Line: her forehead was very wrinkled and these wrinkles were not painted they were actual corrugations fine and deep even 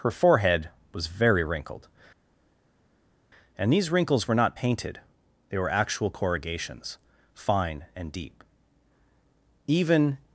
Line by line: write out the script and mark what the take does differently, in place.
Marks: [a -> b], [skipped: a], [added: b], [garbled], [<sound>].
her forehead was very wrinkled and these wrinkles were not painted they were actual corrugations fine and deep even